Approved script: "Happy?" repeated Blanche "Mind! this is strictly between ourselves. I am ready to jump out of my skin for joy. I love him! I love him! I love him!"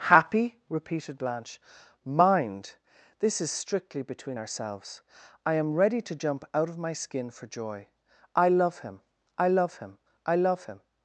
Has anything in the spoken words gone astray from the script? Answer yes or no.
no